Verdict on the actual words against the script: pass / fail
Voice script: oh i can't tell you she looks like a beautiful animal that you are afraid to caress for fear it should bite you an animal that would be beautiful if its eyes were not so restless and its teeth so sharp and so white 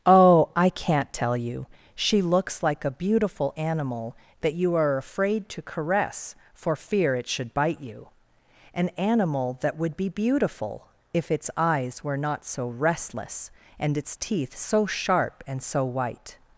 pass